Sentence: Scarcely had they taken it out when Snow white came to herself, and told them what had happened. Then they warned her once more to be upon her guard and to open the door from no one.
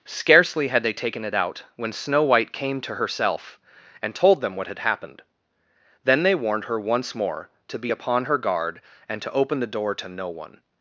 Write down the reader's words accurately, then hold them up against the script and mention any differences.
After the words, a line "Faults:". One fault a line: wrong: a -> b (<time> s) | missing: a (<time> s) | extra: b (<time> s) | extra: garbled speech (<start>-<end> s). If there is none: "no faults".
Scarcely had they taken it out when Snow white came to herself, and told them what had happened. Then they warned her once more to be upon her guard and to open the door to no one.
Faults:
wrong: from -> to (9.9 s)